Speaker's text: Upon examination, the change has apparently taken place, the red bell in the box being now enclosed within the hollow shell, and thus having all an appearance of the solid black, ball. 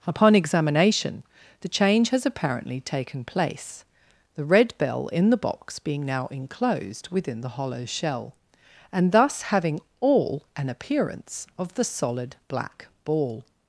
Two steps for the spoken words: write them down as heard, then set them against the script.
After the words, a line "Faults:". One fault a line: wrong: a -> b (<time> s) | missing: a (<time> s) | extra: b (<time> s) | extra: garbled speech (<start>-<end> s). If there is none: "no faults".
Upon examination, the change has apparently taken place, the red bell in the box being now enclosed within the hollow shell, and thus having all an appearance of the solid black, ball.
Faults:
no faults